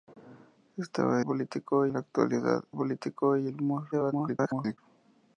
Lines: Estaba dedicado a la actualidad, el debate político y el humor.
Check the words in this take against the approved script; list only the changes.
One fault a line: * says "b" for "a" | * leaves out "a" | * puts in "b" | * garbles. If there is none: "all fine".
* says "político" for "dedicado"
* leaves out "el debate"
* garbles